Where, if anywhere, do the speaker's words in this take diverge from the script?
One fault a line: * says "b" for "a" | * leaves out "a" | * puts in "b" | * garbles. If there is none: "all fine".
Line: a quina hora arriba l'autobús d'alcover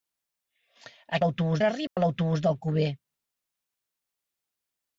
* says "l'autobús" for "quina"